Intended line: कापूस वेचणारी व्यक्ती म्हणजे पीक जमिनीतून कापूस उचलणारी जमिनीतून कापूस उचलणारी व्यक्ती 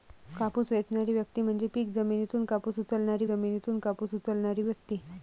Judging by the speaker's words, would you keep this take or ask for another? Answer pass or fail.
pass